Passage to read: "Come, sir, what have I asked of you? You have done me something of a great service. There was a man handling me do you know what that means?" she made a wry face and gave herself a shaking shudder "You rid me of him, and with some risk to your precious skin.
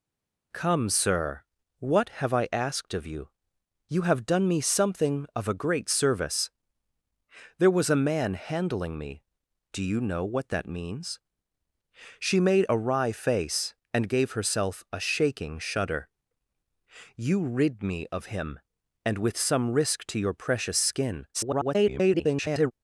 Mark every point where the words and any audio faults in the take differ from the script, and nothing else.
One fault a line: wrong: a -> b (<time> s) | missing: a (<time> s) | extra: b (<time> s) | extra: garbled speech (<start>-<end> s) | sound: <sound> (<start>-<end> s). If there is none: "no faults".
extra: garbled speech (21.3-22.7 s)